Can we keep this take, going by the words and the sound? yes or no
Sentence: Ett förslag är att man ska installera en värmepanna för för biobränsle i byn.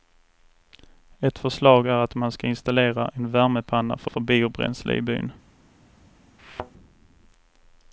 no